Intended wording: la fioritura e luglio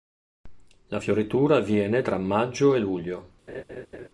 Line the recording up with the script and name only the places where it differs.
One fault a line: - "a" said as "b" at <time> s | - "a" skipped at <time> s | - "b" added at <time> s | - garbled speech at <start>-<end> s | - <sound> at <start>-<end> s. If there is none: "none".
- "avviene tra maggio" added at 1.6 s
- laugh at 3.5-4.1 s